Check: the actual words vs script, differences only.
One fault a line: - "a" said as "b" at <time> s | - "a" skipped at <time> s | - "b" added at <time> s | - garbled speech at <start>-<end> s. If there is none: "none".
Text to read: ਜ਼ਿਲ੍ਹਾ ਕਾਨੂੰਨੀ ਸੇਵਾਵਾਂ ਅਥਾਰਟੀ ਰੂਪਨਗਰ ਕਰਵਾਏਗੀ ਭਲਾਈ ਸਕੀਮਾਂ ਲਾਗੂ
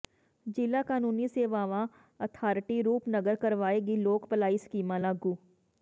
- "ਲੋਕ" added at 4.0 s